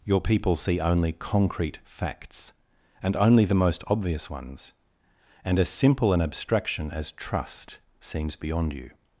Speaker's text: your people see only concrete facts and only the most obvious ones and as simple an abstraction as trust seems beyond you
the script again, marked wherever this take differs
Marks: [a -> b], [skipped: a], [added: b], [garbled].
your people see only concrete facts and only the most obvious ones and as simple an abstraction as trust seems beyond you